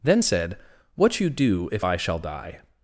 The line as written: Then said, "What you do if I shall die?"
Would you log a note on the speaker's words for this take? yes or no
no